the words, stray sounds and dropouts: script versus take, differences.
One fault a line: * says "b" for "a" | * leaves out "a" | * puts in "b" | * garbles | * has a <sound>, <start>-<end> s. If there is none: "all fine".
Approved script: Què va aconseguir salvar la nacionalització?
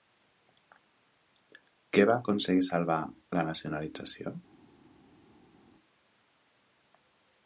all fine